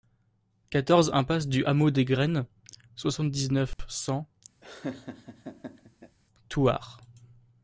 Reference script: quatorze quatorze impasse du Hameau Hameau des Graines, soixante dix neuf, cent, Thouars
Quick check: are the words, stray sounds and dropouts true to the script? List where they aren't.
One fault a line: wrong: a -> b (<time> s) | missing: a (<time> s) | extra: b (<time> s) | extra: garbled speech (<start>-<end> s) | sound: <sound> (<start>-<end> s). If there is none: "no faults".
missing: quatorze (1.1 s)
missing: Hameau (1.9 s)
sound: dropout (3.7-3.8 s)
sound: laugh (4.6-6.2 s)